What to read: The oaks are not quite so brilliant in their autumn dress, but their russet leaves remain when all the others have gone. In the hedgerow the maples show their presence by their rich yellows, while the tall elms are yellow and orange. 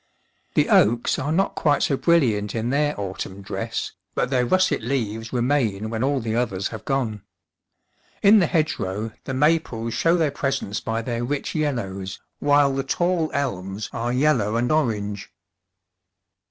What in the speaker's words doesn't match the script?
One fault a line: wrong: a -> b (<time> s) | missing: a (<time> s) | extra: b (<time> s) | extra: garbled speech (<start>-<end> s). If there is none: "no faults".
no faults